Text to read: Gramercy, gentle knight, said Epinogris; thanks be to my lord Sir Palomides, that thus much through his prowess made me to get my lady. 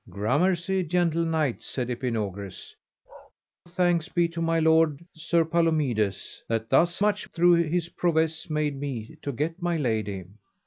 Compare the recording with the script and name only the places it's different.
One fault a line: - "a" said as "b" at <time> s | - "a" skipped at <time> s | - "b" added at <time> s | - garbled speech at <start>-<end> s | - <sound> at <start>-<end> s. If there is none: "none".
- bark at 3.1-3.3 s